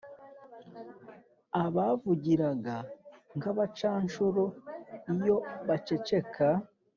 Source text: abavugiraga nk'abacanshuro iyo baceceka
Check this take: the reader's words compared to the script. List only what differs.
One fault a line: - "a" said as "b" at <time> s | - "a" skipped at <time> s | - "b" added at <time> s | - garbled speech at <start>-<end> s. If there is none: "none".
none